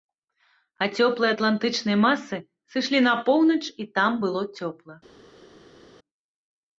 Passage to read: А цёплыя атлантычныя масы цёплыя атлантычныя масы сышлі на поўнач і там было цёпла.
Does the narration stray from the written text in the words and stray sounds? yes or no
yes